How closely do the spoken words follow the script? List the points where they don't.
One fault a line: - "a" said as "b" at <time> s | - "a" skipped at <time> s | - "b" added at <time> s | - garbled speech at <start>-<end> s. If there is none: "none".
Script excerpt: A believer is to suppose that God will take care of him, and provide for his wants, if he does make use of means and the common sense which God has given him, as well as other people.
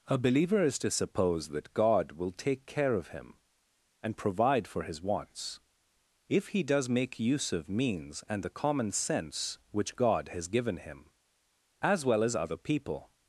none